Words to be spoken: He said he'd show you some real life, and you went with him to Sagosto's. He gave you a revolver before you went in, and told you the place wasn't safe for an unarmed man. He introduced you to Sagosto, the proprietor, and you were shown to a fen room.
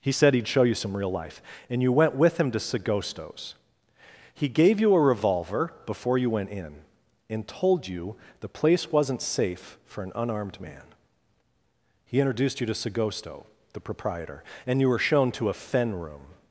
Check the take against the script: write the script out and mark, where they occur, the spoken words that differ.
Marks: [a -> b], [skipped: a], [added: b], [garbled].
He said he'd show you some real life, and you went with him to Sagosto's. He gave you a revolver before you went in, and told you the place wasn't safe for an unarmed man. He introduced you to Sagosto, the proprietor, and you were shown to a fen room.